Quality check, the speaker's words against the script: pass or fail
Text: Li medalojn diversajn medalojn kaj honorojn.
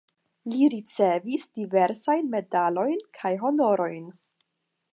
fail